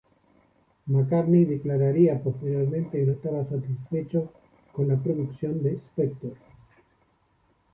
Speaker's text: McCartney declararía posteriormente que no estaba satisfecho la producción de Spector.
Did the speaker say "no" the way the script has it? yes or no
yes